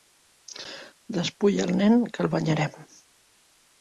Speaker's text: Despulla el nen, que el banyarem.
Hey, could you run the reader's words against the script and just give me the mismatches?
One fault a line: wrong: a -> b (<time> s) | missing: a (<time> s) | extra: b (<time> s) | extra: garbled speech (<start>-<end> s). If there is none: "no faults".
no faults